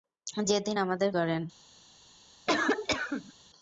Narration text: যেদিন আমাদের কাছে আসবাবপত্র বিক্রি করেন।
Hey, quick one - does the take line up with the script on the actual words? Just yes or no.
no